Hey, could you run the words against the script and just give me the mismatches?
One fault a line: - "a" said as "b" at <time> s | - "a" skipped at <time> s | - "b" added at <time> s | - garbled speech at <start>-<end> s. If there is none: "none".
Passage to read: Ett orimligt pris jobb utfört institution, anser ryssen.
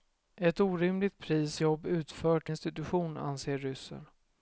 none